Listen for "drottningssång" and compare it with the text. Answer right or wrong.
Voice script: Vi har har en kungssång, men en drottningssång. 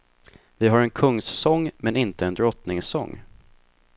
right